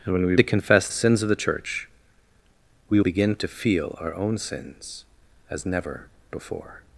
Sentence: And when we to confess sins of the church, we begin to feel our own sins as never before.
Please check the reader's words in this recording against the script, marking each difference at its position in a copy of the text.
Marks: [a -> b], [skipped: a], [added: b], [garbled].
And when we to confess sins of the church, we begin to feel our own sins as never before.